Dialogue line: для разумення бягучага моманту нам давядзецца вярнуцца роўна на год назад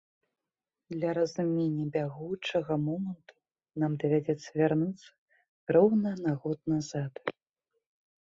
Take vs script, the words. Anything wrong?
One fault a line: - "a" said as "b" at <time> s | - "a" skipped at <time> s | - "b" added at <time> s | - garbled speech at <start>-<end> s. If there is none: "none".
none